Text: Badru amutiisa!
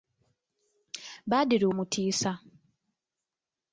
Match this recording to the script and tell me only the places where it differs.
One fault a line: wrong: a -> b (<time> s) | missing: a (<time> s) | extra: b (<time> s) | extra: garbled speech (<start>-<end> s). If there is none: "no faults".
no faults